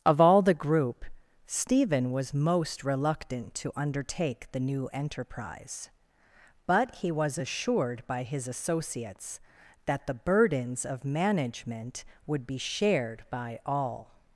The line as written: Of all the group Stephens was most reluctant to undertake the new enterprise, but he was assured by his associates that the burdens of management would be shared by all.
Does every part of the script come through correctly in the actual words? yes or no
no